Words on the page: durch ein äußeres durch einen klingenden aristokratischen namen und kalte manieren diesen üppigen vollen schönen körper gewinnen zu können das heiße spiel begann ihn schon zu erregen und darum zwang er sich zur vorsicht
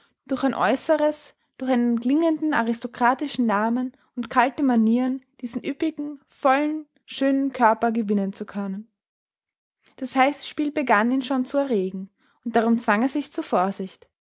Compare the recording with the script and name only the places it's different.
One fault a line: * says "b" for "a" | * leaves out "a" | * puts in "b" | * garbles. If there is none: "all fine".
all fine